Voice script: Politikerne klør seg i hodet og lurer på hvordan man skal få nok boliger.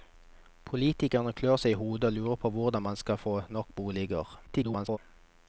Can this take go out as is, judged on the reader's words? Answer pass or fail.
fail